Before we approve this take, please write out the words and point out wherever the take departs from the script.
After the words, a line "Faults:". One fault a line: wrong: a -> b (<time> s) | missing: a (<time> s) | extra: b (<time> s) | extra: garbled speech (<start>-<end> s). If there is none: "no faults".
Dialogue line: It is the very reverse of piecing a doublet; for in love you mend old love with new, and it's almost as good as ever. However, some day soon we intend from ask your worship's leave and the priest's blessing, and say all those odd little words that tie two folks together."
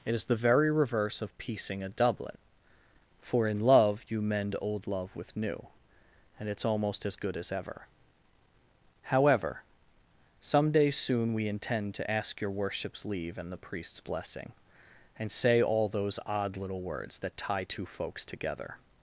It is the very reverse of piecing a doublet; for in love you mend old love with new, and it's almost as good as ever. However, some day soon we intend to ask your worship's leave and the priest's blessing, and say all those odd little words that tie two folks together."
Faults:
wrong: from -> to (11.9 s)